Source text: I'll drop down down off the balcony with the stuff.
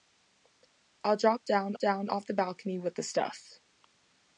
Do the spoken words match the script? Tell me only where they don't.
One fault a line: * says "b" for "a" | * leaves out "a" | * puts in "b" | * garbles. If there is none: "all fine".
all fine